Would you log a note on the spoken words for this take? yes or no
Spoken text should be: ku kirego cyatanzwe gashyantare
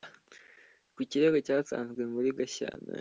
yes